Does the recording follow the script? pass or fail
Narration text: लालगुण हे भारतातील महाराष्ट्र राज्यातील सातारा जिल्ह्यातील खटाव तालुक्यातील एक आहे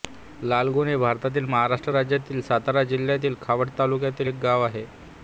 fail